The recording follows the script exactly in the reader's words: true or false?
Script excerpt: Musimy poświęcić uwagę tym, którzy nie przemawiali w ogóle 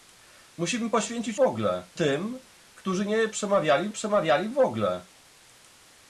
false